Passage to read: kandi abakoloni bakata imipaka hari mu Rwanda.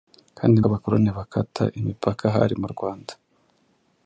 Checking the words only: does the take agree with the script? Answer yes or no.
yes